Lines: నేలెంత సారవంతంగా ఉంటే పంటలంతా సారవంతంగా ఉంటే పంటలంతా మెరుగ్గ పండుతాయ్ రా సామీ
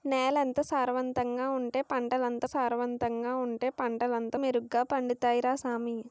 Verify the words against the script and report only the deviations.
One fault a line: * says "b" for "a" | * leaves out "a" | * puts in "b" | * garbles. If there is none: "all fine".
all fine